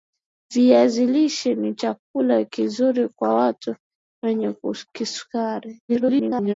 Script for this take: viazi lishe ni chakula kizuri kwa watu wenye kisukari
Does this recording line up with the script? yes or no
no